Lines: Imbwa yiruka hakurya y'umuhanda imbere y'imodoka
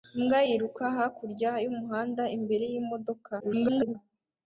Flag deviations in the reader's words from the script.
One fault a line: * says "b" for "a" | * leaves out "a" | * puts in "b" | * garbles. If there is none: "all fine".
* garbles